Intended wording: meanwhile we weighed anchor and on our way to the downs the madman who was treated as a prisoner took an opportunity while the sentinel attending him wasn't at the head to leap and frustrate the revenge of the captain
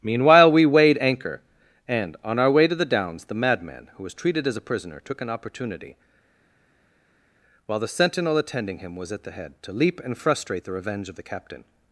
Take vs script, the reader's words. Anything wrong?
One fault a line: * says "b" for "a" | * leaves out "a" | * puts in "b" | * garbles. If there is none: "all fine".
* says "was" for "wasn't"